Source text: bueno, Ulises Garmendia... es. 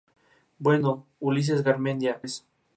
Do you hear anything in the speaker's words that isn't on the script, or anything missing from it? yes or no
no